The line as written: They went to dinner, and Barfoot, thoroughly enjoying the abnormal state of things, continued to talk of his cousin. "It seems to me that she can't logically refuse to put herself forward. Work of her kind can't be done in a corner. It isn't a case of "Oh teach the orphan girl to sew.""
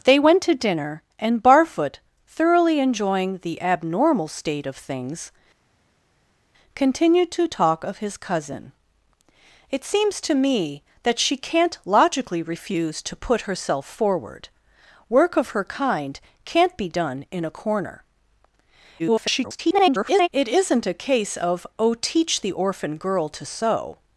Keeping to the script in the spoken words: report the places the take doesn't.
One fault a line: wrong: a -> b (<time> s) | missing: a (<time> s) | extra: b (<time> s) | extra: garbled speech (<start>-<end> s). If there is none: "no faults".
extra: garbled speech (19.0-20.3 s)